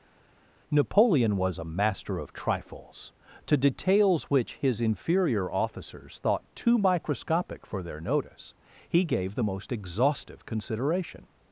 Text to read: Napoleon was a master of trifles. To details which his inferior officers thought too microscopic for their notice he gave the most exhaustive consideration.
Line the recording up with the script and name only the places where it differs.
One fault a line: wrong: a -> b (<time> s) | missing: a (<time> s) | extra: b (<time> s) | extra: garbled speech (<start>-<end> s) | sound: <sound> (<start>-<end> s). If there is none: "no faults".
no faults